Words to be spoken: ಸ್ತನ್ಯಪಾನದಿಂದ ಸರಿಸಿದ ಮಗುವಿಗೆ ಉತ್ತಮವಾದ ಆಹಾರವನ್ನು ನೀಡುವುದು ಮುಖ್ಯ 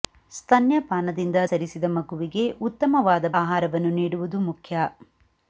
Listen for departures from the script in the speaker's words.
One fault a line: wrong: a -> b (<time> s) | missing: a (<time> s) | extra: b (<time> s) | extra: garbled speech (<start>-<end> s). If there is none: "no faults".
no faults